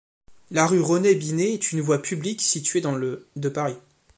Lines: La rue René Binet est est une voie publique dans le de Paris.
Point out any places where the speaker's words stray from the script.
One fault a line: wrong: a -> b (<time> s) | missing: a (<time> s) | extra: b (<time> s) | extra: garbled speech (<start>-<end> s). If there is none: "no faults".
missing: est (1.7 s)
extra: située (2.4 s)